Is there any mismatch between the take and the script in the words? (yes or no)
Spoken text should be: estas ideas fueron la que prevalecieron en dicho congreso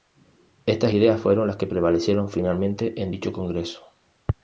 yes